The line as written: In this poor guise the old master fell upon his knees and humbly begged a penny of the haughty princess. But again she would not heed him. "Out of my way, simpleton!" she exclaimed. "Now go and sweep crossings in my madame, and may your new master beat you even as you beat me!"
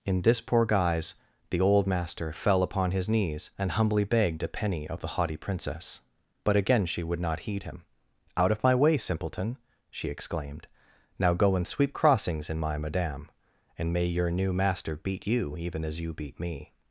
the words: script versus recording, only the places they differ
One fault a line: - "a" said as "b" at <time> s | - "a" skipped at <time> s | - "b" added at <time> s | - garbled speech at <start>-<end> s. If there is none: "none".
none